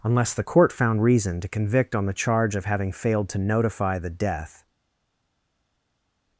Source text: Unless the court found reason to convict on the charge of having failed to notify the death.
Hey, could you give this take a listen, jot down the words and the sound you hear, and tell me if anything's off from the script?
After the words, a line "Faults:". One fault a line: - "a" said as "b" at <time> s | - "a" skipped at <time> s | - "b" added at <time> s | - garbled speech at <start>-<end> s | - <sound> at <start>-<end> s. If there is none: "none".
Unless the court found reason to convict on the charge of having failed to notify the death.
Faults:
none